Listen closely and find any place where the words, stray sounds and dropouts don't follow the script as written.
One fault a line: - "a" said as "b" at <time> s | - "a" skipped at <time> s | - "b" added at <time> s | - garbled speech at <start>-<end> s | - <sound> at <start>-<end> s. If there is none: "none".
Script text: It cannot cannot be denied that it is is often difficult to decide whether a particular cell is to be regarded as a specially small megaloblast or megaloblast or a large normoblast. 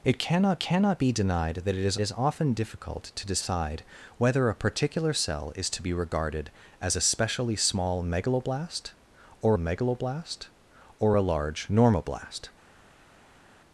none